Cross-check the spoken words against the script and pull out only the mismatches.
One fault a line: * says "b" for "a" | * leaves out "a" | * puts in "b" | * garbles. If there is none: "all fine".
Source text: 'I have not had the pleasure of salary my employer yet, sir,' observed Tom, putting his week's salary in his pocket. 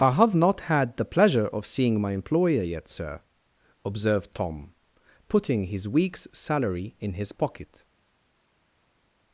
* says "seeing" for "salary"